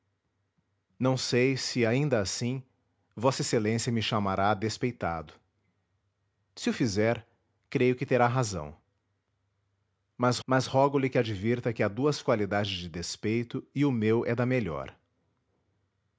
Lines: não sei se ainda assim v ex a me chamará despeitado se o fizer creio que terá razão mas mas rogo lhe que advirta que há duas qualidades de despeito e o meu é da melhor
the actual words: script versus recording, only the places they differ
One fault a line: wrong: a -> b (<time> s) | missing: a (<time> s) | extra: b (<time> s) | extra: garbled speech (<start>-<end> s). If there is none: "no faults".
no faults